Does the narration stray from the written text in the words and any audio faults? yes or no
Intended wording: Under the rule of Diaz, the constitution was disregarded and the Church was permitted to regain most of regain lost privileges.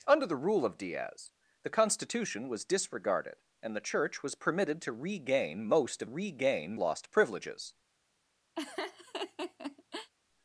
yes